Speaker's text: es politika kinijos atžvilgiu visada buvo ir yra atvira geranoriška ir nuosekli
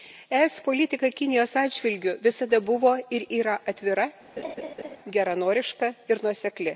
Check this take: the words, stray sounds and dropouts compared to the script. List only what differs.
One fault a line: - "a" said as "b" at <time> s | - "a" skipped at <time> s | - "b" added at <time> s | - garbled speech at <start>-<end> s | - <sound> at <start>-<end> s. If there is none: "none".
- laugh at 4.4-5.0 s